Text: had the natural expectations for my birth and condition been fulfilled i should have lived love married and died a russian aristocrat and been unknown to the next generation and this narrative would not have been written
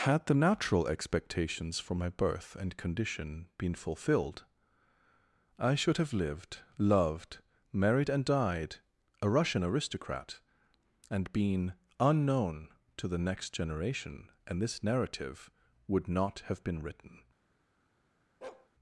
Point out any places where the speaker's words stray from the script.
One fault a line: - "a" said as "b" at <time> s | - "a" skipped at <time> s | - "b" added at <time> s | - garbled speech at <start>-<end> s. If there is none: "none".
- "love" said as "loved" at 6.8 s